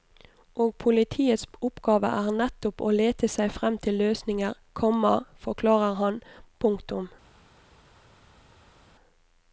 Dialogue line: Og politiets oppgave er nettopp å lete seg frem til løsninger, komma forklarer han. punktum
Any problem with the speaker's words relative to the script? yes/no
no